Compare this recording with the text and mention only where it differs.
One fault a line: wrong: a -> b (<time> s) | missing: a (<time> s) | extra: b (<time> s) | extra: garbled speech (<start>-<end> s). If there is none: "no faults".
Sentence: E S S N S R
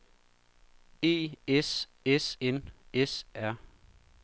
no faults